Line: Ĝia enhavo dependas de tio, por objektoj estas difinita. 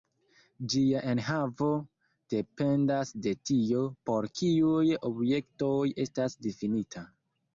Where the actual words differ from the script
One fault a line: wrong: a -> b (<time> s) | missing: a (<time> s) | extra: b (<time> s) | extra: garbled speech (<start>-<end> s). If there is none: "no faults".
extra: kiuj (4.4 s)